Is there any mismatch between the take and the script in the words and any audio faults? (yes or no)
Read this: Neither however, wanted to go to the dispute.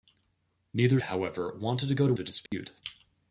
yes